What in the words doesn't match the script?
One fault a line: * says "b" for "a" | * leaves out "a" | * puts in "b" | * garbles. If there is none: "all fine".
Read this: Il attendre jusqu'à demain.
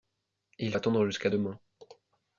all fine